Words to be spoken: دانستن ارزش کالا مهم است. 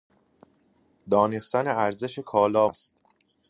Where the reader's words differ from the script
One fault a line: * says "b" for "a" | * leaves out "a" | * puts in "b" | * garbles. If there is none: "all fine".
* leaves out "مهم"